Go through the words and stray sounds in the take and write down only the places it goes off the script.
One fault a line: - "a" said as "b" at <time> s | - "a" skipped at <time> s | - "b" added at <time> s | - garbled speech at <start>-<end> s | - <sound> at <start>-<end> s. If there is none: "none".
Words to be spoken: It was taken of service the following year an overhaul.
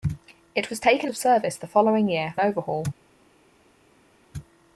none